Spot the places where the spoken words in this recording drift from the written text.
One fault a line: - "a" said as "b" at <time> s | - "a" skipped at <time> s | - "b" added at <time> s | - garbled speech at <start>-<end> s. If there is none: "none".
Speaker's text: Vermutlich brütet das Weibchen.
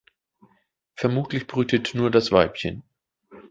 - "nur" added at 1.9 s